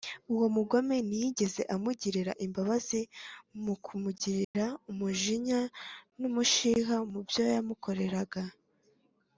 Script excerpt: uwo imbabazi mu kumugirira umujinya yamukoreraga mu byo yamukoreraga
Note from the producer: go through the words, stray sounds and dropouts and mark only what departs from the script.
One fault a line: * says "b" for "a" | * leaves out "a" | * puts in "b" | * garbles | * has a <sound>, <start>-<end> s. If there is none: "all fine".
* puts in "mugome ntiyigeze amugirira"
* has a dropout, 4.4-4.5 s
* says "n'umushiha" for "yamukoreraga"